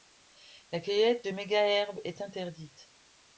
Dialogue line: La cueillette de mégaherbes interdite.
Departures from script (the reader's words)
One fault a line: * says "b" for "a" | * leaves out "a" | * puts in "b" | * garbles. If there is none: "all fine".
* puts in "est"